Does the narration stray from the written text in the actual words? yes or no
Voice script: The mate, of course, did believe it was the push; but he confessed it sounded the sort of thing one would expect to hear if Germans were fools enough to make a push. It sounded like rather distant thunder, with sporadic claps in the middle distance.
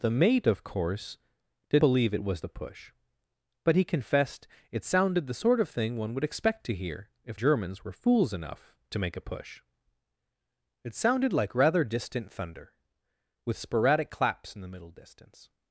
no